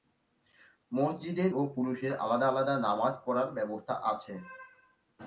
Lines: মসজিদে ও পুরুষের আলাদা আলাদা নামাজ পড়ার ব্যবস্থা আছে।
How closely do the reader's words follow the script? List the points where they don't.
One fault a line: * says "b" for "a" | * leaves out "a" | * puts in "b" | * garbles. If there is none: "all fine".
all fine